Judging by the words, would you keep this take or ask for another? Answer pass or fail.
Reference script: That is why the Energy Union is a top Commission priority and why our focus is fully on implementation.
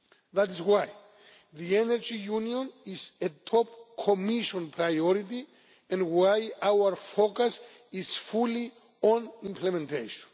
pass